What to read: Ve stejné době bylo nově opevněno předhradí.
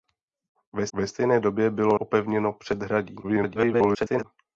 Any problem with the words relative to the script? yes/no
yes